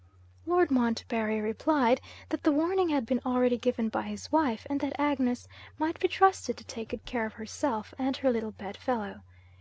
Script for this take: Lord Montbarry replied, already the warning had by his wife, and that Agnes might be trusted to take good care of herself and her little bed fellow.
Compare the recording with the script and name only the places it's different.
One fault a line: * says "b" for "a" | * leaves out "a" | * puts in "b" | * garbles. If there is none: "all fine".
* says "that" for "already"
* puts in "been already given"